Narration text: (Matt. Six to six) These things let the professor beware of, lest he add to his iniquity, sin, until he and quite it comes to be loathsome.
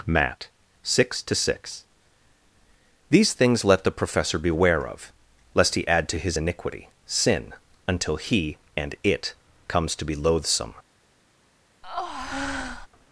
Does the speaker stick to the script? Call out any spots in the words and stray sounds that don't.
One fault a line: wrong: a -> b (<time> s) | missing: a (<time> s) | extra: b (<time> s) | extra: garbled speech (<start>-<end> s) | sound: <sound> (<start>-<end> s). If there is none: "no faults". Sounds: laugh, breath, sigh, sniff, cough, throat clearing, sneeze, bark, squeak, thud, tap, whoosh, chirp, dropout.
missing: quite (8.9 s)
sound: breath (11.8-12.9 s)